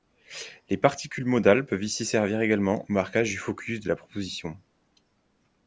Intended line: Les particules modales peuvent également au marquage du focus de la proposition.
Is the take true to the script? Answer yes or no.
no